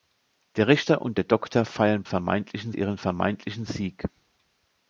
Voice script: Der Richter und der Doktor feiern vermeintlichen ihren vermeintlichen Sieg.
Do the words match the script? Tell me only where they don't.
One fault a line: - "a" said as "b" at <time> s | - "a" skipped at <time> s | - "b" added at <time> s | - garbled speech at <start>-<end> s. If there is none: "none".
none